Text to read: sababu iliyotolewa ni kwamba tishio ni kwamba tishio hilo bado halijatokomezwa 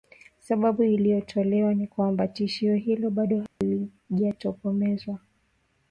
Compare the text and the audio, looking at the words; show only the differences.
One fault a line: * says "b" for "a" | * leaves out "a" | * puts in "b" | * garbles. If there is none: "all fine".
* leaves out "ni kwamba tishio"